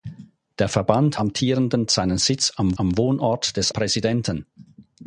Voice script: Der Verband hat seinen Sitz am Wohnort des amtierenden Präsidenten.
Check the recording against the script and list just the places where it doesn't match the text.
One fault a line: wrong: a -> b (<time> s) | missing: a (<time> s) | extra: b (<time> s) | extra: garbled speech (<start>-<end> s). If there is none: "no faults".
wrong: hat -> amtierenden (1.1 s)
extra: am (2.8 s)
missing: amtierenden (3.7 s)